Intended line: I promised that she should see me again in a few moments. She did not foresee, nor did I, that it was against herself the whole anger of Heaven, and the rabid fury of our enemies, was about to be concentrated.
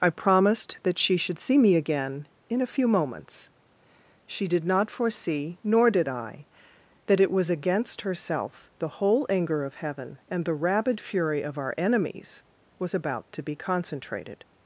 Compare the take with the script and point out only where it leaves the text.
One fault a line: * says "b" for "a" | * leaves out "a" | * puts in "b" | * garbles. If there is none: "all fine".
all fine